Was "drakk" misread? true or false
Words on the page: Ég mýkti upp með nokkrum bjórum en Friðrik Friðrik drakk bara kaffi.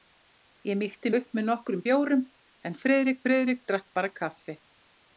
false